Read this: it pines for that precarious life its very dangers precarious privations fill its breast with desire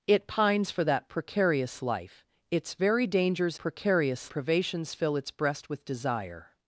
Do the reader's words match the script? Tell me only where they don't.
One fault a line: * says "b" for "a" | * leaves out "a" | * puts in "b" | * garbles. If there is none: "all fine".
all fine